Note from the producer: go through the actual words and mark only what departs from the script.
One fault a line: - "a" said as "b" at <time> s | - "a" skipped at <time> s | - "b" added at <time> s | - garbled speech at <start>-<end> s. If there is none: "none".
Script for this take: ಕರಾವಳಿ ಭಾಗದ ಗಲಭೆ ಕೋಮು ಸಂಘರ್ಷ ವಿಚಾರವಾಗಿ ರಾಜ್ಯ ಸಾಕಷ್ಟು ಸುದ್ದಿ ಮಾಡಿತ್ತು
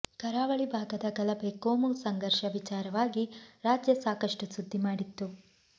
none